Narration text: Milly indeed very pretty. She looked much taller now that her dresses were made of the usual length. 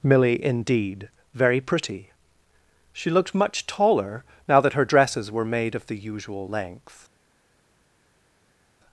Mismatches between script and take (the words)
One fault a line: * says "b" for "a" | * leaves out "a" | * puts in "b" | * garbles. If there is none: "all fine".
all fine